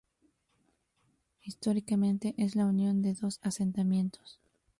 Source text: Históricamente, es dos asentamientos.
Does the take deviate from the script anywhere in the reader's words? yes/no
yes